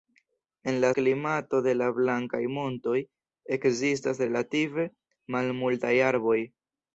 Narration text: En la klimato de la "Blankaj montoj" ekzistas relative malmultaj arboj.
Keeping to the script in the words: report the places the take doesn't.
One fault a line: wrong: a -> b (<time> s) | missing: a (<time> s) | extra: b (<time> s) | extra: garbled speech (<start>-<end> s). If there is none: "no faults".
no faults